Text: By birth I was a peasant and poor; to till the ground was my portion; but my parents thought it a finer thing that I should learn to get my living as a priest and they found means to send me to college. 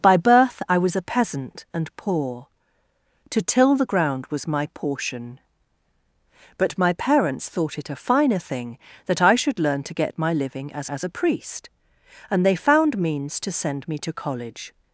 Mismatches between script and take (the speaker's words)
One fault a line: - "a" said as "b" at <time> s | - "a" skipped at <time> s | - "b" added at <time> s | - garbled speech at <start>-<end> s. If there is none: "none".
- "as" added at 10.9 s